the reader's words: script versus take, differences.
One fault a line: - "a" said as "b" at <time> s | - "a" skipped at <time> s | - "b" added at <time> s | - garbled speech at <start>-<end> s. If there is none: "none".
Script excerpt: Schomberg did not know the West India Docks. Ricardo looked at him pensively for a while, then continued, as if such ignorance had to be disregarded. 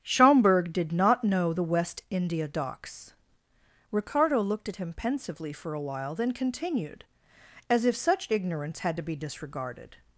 none